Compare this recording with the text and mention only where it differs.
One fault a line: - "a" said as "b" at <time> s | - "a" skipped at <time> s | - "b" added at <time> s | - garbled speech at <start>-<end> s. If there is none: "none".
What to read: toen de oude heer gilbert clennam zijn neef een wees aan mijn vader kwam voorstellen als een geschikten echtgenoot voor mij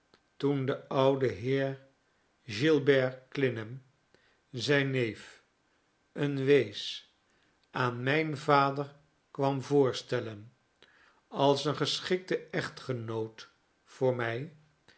none